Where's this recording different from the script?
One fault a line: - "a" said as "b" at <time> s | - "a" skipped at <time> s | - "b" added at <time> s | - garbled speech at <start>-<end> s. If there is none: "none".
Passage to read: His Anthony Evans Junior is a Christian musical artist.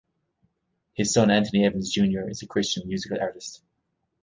- "son" added at 1.1 s